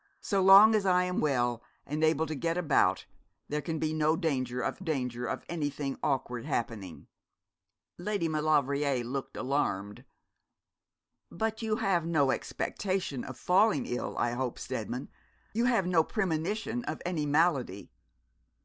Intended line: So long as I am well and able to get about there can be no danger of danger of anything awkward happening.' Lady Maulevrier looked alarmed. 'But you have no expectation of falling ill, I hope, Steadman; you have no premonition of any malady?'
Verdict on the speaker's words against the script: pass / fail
pass